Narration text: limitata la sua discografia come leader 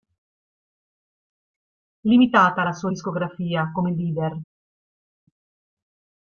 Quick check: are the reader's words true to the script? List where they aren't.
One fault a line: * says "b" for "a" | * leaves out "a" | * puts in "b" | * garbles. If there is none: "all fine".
all fine